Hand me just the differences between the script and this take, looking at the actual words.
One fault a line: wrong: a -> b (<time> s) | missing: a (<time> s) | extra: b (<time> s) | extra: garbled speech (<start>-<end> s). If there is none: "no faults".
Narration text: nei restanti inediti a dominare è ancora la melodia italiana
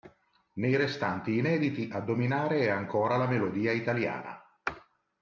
no faults